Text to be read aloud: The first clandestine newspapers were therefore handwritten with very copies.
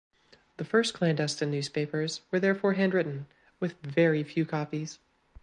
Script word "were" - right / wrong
right